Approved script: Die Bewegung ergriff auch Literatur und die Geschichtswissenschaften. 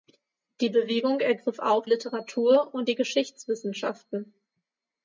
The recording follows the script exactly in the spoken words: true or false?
true